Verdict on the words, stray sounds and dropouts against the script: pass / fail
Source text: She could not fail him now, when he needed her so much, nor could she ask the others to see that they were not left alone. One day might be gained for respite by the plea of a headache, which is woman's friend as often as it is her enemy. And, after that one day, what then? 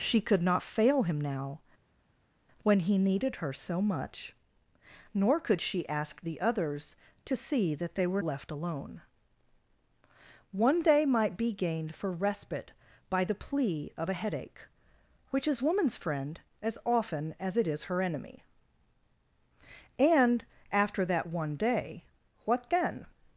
fail